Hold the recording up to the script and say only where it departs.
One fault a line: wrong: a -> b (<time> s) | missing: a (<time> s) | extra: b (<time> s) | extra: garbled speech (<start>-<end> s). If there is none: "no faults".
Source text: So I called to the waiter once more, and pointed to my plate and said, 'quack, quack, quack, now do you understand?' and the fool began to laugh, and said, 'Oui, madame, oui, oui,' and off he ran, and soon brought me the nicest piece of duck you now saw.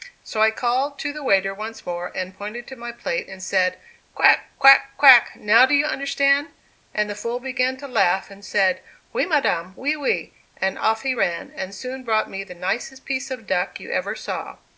wrong: now -> ever (13.9 s)